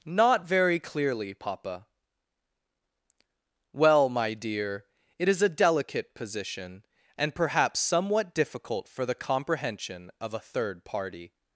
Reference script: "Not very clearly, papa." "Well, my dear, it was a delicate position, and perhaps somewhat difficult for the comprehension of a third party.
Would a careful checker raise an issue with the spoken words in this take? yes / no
yes